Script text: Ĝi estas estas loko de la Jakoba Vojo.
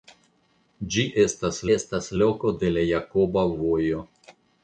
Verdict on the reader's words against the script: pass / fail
pass